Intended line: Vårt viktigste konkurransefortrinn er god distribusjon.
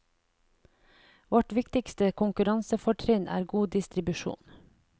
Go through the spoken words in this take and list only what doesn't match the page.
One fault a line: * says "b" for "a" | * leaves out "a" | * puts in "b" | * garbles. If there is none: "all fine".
all fine